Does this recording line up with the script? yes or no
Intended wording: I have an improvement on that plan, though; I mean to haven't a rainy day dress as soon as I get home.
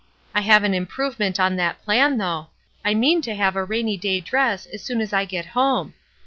no